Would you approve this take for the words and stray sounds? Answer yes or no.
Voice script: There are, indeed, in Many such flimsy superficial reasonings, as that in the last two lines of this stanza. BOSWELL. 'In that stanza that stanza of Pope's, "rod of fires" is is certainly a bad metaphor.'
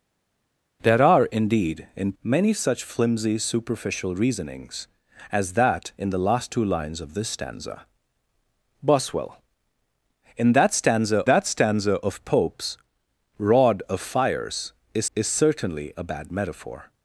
yes